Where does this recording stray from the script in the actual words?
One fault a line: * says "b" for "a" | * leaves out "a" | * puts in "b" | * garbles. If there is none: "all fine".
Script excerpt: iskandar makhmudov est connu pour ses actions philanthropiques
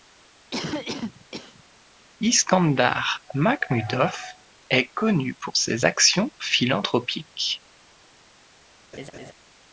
all fine